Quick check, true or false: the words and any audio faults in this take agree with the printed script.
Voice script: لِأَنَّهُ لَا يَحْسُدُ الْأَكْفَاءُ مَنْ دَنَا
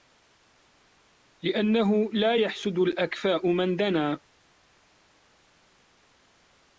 true